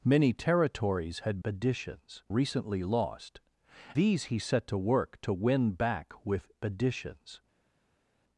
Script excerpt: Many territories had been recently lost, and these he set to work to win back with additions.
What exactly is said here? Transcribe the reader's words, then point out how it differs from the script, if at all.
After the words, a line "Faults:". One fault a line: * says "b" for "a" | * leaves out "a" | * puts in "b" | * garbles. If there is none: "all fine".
Many territories had additions recently lost, these he set to work to win back with additions.
Faults:
* says "additions" for "been"
* leaves out "and"